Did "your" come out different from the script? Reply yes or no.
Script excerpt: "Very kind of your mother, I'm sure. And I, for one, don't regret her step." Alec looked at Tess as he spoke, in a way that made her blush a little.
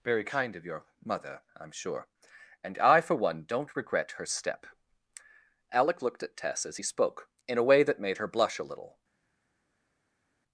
no